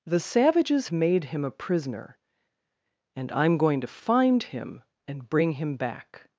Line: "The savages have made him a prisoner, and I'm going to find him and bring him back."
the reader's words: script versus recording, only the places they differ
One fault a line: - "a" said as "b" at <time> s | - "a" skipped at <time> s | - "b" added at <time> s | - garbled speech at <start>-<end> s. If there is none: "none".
- "have" skipped at 0.9 s